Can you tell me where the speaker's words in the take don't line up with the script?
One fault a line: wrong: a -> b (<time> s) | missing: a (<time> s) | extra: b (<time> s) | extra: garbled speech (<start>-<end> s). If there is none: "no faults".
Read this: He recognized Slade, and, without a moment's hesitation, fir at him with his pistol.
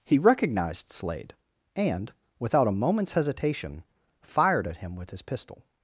wrong: fir -> fired (4.2 s)